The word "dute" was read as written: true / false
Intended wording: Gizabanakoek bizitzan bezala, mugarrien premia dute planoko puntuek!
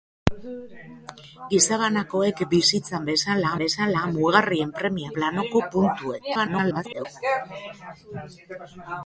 false